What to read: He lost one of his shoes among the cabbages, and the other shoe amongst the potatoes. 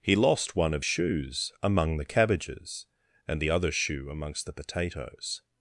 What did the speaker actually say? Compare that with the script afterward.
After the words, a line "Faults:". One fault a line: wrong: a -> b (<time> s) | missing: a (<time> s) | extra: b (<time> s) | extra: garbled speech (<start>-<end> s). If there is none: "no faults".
He lost one of shoes among the cabbages, and the other shoe amongst the potatoes.
Faults:
missing: his (0.8 s)